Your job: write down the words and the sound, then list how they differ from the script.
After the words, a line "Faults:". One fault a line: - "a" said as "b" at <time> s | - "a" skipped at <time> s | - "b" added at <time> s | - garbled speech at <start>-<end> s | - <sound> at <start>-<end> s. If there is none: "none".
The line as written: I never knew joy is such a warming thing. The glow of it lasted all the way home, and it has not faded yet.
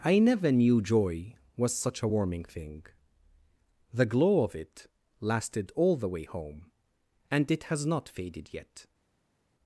I never knew joy was such a warming thing. The glow of it lasted all the way home, and it has not faded yet.
Faults:
- "is" said as "was" at 1.6 s